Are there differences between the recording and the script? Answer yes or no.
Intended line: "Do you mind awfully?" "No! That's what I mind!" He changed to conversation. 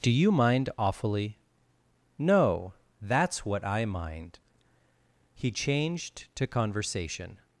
no